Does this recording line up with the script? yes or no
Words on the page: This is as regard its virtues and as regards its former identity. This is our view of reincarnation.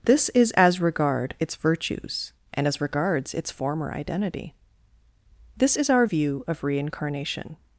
yes